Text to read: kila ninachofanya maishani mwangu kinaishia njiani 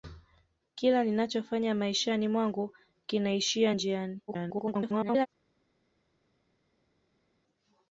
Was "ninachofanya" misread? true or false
false